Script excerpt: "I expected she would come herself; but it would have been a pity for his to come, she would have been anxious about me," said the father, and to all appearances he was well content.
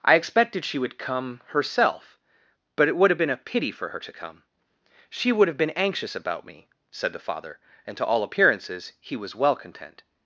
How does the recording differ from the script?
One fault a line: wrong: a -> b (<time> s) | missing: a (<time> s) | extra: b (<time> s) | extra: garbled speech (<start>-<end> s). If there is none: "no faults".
wrong: his -> her (3.9 s)